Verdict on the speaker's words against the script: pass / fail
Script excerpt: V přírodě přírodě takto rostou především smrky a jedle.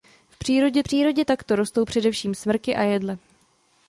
pass